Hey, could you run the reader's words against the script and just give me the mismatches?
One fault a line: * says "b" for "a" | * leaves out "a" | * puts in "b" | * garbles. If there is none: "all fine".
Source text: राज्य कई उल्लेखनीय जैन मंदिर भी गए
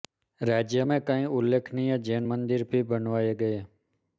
* puts in "में"
* puts in "बनवाए"